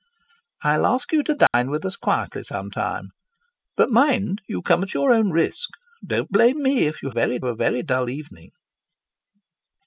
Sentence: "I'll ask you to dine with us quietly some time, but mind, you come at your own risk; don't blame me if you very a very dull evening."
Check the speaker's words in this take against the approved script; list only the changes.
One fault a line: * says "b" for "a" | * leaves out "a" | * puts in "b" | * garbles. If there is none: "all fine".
all fine